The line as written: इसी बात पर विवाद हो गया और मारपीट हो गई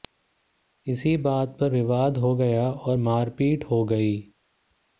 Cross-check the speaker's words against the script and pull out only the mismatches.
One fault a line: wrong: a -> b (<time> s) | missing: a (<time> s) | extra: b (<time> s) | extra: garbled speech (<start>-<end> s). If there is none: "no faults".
no faults